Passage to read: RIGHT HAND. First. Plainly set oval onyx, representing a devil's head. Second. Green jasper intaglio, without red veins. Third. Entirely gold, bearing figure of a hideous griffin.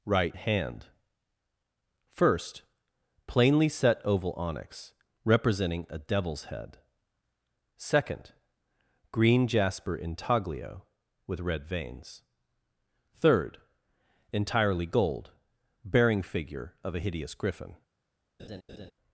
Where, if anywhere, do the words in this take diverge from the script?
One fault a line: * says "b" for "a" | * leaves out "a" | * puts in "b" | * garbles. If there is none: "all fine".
* says "with" for "without"